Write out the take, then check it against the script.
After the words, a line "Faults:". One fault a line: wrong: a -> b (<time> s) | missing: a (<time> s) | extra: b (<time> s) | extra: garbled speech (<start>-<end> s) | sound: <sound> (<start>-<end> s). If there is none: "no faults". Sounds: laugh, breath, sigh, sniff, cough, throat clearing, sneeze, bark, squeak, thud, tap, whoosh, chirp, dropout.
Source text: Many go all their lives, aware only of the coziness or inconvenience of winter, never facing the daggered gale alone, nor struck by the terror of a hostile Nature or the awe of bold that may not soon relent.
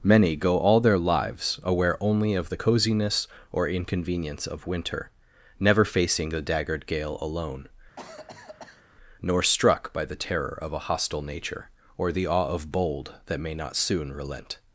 Many go all their lives, aware only of the coziness or inconvenience of winter, never facing the daggered gale alone, nor struck by the terror of a hostile Nature or the awe of bold that may not soon relent.
Faults:
sound: cough (8.0-8.8 s)